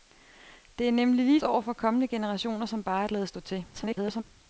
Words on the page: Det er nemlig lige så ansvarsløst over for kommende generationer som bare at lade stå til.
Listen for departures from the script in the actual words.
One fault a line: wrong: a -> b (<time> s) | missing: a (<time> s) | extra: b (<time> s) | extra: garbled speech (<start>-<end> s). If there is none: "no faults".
missing: så ansvarsløst (1.4 s)
extra: garbled speech (3.7-4.2 s)